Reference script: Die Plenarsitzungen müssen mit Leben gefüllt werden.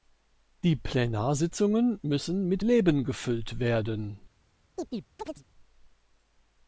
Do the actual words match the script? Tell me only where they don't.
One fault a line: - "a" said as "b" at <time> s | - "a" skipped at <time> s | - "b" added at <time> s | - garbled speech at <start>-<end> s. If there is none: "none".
none